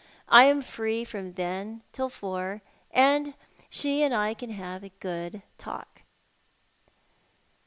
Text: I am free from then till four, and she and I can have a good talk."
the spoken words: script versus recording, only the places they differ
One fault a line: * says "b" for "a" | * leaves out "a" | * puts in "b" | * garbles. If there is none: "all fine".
all fine